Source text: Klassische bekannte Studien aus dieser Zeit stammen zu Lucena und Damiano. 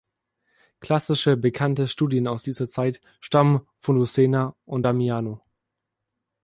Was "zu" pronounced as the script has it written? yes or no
no